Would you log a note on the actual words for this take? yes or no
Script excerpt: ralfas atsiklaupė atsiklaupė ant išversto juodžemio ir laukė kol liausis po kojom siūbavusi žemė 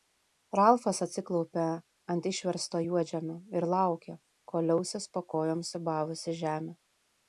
yes